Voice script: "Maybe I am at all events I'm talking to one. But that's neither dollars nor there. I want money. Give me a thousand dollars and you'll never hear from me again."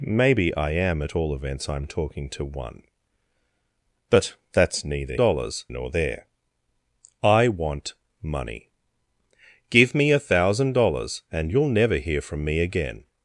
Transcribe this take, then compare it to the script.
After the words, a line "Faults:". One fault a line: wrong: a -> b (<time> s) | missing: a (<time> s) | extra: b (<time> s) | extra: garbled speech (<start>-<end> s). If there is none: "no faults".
"Maybe I am at all events I'm talking to one. But that's neither dollars nor there. I want money. Give me a thousand dollars and you'll never hear from me again."
Faults:
no faults